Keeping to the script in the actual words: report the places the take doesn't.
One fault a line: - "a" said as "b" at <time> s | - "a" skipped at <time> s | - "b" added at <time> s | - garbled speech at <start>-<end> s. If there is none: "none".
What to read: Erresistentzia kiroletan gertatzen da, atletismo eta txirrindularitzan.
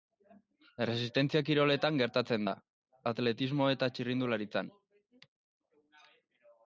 none